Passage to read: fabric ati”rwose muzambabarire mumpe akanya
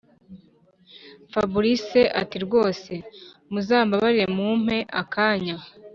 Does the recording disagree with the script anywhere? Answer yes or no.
no